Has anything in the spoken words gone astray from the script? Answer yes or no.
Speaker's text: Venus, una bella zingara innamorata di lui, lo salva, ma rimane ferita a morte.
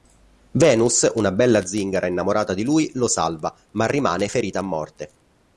no